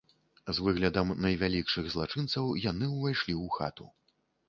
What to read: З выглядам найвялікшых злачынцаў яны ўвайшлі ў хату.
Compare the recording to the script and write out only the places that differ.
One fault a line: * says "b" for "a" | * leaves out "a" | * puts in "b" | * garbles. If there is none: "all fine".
all fine